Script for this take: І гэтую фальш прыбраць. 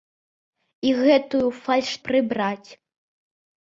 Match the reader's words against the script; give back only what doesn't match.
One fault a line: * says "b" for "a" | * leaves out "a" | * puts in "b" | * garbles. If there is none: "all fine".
all fine